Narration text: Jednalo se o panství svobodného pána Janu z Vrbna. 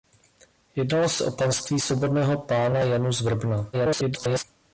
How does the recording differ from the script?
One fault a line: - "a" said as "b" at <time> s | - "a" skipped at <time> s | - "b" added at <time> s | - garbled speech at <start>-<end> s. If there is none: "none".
- garbled speech at 3.7-4.4 s